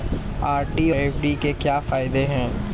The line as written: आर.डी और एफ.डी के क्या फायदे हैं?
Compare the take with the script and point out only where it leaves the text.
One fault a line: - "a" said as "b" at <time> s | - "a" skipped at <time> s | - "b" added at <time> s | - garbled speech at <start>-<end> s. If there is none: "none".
- "और" skipped at 0.9 s